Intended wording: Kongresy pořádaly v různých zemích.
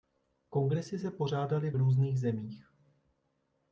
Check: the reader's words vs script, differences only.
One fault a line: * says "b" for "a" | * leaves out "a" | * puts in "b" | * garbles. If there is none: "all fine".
* puts in "se"